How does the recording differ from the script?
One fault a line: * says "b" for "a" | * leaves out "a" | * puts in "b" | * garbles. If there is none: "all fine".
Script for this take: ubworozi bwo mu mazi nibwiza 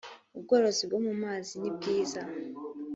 all fine